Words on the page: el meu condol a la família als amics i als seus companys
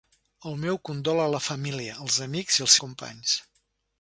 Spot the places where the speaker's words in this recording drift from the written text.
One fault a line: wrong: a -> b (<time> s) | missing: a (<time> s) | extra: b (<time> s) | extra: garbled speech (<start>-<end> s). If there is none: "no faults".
missing: seus (2.8 s)